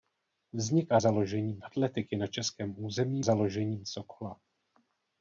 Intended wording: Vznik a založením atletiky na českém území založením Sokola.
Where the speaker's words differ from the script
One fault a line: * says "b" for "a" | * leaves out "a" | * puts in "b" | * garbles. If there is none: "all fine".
all fine